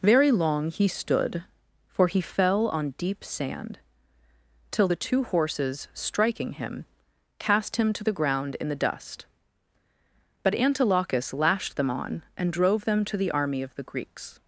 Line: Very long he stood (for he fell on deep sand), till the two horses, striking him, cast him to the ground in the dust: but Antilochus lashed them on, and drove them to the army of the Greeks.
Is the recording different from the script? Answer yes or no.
no